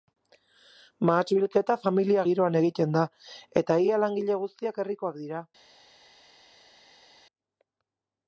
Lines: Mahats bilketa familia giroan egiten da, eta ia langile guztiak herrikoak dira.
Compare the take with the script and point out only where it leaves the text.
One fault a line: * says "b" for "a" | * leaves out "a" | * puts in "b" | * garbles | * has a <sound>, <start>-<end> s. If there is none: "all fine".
all fine